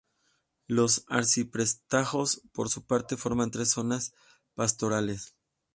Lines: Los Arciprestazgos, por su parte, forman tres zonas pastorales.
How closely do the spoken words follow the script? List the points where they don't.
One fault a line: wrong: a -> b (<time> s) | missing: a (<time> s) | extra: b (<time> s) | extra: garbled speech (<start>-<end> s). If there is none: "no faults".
no faults